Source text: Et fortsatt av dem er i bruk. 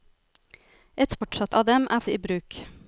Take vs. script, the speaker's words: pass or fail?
pass